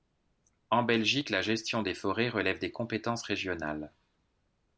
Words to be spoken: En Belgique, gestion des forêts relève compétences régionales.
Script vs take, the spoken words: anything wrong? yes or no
yes